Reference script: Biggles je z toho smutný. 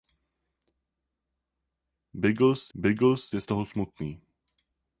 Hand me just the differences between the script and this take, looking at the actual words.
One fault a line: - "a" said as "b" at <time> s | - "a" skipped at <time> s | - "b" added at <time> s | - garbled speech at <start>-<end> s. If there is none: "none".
- "biggles" added at 2.7 s